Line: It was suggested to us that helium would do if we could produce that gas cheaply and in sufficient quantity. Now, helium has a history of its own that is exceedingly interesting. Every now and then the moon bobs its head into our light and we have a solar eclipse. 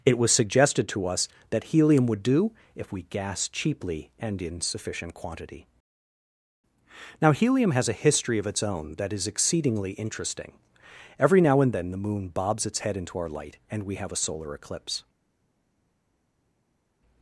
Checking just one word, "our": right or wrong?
right